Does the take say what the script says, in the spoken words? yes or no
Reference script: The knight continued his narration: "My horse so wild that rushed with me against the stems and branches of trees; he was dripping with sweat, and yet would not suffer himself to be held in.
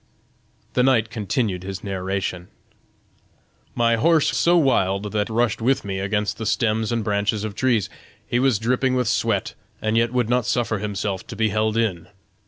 yes